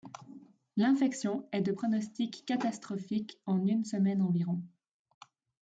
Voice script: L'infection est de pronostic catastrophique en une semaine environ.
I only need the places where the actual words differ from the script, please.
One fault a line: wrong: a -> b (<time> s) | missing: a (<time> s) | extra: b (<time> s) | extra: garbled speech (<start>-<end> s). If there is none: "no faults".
no faults